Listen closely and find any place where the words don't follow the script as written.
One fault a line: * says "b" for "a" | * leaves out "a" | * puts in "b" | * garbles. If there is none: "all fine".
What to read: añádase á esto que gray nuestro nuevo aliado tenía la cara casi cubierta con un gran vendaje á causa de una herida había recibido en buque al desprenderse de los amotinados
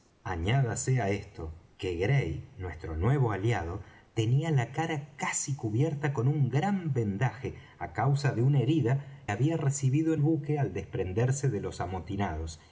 all fine